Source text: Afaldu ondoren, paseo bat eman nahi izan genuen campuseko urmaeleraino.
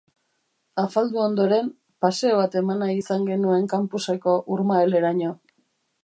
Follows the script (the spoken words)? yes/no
yes